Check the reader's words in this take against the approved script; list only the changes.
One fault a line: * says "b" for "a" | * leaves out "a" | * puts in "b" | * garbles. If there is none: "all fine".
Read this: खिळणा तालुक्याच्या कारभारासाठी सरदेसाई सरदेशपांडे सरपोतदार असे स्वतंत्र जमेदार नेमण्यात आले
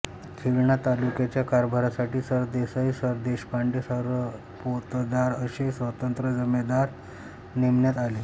all fine